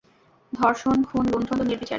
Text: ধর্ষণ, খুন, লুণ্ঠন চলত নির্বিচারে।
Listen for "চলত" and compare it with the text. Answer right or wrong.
wrong